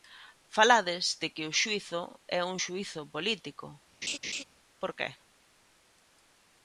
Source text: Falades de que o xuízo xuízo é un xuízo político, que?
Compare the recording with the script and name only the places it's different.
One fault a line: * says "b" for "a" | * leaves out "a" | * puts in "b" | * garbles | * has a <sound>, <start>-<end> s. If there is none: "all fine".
* leaves out "xuízo"
* has a laugh, 4.0-4.4 s
* puts in "por"